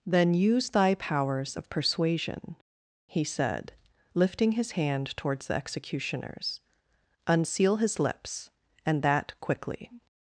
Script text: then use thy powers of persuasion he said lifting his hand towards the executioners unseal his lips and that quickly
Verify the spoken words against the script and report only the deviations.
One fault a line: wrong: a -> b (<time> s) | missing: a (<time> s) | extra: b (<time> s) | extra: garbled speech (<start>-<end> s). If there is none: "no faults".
no faults